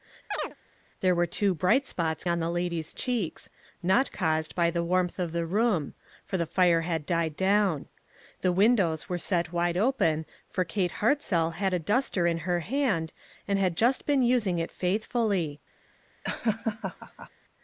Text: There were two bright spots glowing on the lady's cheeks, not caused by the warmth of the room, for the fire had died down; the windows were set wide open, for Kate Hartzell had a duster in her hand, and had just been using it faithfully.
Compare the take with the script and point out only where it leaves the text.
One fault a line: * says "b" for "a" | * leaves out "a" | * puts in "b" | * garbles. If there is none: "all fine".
* leaves out "glowing"